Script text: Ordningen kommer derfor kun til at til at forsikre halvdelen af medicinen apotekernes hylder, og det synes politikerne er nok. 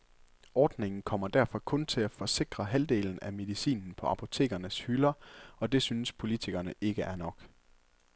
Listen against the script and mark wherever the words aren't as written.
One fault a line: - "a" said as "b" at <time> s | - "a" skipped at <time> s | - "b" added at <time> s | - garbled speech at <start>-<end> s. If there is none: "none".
- "til at" skipped at 2.1 s
- "på" added at 3.9 s
- "ikke" added at 6.8 s